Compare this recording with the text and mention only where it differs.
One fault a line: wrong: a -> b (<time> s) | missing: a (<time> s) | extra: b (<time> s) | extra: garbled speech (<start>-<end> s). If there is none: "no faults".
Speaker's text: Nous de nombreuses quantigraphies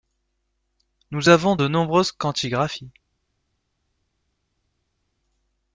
extra: avons (1.3 s)